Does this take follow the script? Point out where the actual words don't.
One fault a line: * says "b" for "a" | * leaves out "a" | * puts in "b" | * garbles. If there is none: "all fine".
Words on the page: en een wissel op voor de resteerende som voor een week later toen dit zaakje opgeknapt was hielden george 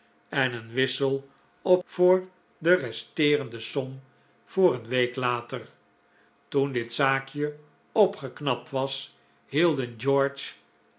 all fine